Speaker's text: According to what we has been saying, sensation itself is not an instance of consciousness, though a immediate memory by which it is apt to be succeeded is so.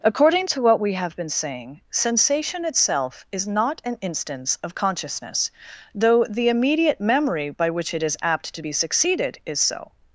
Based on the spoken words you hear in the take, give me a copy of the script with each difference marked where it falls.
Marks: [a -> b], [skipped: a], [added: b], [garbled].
According to what we [has -> have] been saying, sensation itself is not an instance of consciousness, though [a -> the] immediate memory by which it is apt to be succeeded is so.